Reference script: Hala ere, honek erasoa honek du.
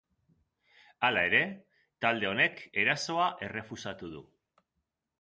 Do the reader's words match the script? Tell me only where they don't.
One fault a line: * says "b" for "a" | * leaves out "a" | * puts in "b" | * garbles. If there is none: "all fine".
* puts in "talde"
* says "errefusatu" for "honek"